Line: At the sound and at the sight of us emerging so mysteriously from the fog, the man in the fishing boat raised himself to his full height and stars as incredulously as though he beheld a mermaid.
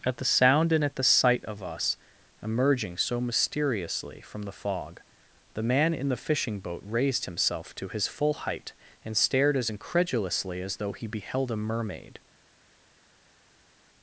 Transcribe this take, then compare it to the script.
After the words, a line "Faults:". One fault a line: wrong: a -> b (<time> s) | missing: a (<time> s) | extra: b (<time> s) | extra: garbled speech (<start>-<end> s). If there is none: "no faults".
At the sound and at the sight of us emerging so mysteriously from the fog, the man in the fishing boat raised himself to his full height and stared as incredulously as though he beheld a mermaid.
Faults:
wrong: stars -> stared (9.2 s)